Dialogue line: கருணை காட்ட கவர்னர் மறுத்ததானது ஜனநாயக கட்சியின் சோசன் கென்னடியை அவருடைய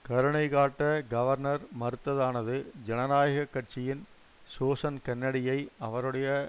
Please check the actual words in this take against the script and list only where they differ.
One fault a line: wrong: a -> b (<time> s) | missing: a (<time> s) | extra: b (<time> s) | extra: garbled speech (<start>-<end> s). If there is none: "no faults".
no faults